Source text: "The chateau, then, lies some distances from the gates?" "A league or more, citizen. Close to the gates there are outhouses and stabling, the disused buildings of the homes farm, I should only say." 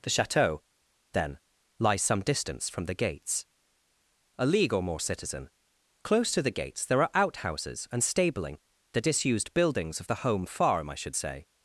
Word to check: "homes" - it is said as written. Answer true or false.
false